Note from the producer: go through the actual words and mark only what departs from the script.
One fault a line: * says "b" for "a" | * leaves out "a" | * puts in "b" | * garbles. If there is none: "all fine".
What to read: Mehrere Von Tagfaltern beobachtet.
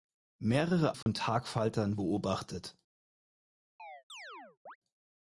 all fine